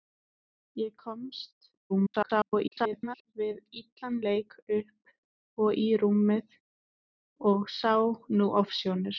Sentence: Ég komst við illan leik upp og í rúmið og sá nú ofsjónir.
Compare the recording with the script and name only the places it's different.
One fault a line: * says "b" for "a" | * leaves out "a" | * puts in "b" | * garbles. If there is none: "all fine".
* garbles